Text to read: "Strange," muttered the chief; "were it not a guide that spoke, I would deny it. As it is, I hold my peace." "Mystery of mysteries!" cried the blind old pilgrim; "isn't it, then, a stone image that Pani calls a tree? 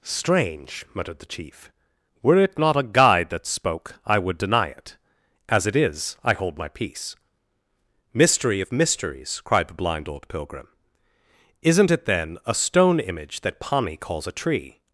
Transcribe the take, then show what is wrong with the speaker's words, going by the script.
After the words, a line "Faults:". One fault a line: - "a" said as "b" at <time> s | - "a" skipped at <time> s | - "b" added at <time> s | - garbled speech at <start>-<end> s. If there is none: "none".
"Strange," muttered the chief; "were it not a guide that spoke, I would deny it. As it is, I hold my peace." "Mystery of mysteries!" cried the blind old pilgrim; "isn't it, then, a stone image that Pani calls a tree?
Faults:
none